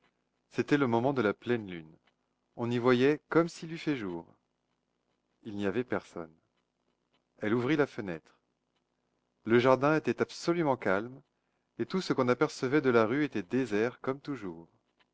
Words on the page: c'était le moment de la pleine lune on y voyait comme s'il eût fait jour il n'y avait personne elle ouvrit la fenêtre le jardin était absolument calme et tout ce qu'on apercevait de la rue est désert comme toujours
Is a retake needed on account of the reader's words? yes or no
yes